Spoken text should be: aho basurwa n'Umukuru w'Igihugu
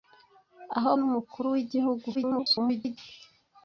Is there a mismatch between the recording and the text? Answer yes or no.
yes